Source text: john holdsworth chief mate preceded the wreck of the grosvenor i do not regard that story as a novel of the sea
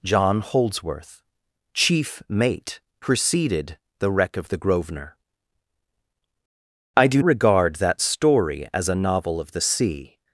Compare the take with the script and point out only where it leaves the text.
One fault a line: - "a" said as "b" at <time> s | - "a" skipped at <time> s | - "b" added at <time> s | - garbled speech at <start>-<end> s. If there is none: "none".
- "not" skipped at 7.2 s